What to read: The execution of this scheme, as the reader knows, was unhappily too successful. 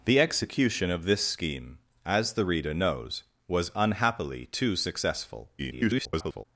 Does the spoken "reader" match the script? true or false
true